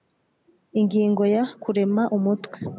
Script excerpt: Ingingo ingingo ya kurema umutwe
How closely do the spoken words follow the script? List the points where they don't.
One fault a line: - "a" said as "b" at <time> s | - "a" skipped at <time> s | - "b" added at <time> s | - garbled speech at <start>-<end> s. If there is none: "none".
- "ingingo" skipped at 1.2 s